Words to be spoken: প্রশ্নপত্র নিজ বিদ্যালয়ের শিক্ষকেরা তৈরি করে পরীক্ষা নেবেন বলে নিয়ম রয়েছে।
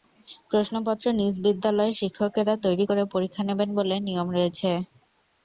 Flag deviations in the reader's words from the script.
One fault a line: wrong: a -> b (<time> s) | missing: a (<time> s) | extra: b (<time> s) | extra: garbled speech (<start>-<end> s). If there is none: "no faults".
no faults